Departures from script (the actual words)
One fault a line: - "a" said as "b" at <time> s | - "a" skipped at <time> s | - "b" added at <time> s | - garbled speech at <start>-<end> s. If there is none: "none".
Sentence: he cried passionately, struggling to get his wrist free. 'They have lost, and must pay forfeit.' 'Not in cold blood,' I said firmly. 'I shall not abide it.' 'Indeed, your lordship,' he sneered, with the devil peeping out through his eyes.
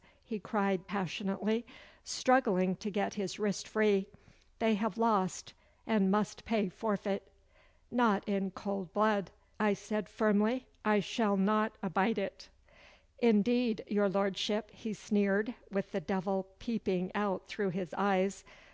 none